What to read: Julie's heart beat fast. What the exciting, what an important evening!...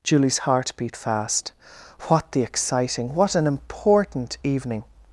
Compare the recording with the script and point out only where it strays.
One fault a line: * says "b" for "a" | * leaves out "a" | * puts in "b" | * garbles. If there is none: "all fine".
all fine